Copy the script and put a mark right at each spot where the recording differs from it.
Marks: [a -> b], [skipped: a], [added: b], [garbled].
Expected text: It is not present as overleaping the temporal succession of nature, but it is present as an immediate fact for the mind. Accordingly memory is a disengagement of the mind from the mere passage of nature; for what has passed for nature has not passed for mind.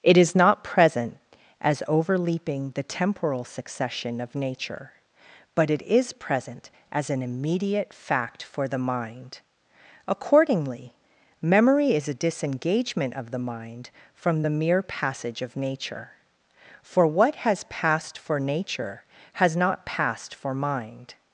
It is not present as overleaping the temporal succession of nature, but it is present as an immediate fact for the mind. Accordingly memory is a disengagement of the mind from the mere passage of nature; for what has passed for nature has not passed for mind.